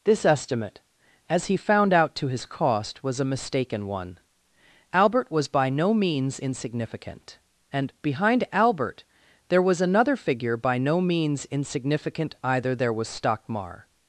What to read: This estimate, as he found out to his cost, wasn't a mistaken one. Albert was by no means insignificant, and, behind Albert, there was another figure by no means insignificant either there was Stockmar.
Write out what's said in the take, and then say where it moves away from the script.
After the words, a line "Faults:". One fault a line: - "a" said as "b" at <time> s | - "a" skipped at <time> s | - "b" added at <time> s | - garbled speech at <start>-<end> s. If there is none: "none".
This estimate, as he found out to his cost, was a mistaken one. Albert was by no means insignificant, and, behind Albert, there was another figure by no means insignificant either there was Stockmar.
Faults:
- "wasn't" said as "was" at 3.0 s